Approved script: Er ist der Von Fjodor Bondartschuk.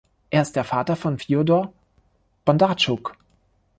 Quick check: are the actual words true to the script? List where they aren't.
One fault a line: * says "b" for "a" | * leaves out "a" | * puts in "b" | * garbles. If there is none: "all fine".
* puts in "Vater"